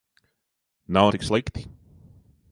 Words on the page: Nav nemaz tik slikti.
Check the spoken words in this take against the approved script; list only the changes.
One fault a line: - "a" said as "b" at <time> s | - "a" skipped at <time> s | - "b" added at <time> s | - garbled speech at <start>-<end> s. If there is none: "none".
- "nemaz" skipped at 1.1 s